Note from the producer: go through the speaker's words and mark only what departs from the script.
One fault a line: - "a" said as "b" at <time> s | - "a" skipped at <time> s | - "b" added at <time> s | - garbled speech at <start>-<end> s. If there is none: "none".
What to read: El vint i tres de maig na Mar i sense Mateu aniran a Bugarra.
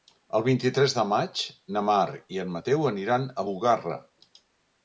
- "sense" said as "en" at 2.5 s